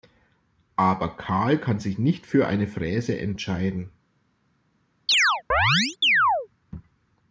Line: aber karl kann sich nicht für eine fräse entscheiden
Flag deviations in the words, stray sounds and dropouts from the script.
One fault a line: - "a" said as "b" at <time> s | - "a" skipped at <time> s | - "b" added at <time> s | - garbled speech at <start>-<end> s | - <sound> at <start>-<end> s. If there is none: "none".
- chirp at 5.1-6.5 s